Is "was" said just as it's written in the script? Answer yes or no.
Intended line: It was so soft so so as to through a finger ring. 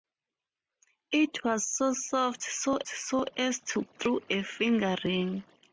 yes